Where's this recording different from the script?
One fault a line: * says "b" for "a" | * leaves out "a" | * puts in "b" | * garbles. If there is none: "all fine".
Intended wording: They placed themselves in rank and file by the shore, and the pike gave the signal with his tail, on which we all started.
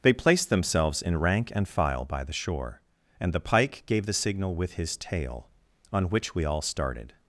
all fine